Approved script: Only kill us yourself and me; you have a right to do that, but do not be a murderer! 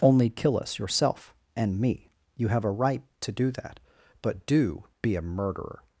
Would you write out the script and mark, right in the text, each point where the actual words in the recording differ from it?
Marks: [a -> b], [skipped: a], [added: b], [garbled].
Only kill us yourself and me; you have a right to do that, but do [skipped: not] be a murderer!